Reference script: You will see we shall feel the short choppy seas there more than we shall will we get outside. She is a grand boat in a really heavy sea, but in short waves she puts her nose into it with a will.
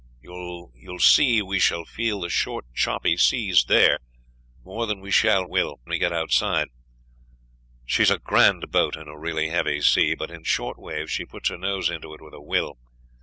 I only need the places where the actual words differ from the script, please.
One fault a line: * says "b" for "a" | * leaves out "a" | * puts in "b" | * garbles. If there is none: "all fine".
all fine